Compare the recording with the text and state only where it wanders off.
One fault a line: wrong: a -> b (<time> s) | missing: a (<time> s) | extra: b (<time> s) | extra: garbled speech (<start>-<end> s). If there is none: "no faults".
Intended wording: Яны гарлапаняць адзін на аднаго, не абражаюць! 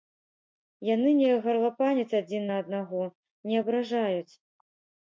extra: не (1.2 s)